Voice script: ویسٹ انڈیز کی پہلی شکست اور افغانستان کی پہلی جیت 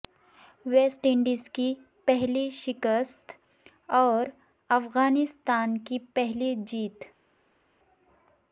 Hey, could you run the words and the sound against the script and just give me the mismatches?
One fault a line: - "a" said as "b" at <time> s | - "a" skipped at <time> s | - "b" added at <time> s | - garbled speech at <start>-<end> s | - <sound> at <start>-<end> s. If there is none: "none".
none